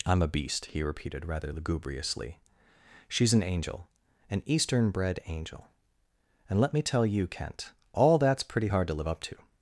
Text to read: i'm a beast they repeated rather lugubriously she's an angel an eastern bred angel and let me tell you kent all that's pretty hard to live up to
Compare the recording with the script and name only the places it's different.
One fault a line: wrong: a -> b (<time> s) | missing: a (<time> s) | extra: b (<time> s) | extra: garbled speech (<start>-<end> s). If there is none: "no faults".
wrong: they -> he (0.7 s)